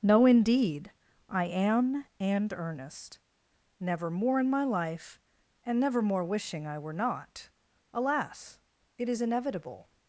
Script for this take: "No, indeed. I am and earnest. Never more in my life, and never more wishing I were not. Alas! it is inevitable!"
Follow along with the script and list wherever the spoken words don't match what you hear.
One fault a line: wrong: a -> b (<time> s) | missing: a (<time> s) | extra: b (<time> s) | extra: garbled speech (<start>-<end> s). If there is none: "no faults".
no faults